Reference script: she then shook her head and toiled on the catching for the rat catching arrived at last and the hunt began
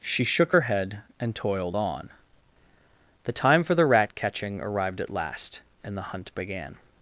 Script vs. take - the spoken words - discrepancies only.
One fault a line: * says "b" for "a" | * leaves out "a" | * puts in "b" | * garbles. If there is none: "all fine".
* leaves out "then"
* says "time" for "catching"